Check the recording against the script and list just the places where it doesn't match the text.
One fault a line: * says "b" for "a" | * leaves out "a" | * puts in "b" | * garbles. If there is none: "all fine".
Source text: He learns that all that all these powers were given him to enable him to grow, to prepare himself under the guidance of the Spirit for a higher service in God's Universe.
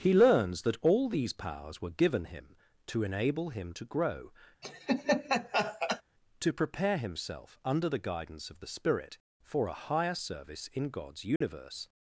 * leaves out "that all"